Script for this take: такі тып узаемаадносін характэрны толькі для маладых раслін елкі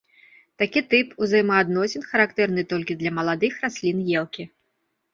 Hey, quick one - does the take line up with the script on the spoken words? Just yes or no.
yes